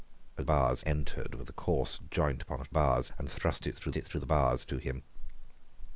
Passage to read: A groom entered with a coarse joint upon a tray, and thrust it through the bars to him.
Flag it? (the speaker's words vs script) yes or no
yes